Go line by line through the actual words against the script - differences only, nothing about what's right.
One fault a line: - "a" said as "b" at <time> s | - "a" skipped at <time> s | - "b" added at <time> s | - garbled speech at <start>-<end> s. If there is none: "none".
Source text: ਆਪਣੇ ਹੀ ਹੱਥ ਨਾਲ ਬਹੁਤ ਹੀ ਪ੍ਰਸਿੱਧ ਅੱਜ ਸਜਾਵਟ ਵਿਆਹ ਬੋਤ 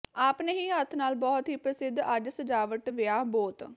none